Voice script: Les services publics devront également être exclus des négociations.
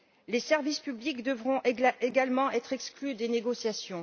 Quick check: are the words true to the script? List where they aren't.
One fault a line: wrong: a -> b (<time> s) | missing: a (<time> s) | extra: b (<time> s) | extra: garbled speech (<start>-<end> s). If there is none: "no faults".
no faults